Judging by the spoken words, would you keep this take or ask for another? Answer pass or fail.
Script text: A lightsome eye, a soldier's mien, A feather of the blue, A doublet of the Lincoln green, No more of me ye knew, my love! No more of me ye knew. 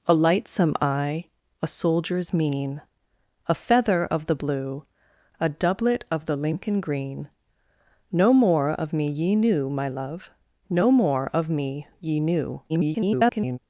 fail